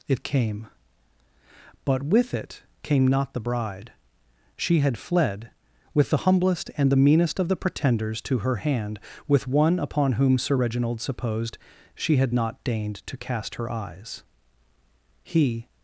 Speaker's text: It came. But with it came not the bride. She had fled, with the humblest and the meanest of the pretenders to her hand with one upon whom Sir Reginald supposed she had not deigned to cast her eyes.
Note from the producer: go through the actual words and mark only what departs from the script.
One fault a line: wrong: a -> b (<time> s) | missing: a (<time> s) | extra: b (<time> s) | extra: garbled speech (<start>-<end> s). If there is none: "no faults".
extra: He (15.2 s)